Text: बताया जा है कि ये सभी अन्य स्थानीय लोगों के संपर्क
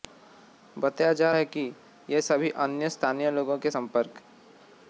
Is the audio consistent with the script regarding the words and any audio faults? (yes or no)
yes